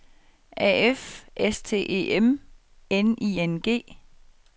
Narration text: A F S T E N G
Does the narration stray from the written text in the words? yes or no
yes